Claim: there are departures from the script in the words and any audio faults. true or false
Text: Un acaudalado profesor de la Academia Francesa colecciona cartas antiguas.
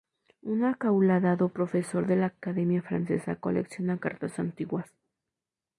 false